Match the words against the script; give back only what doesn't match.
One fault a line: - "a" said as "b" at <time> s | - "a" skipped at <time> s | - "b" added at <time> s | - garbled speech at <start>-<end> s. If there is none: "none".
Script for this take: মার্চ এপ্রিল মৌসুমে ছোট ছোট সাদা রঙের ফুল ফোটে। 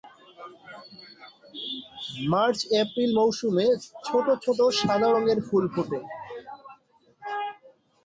none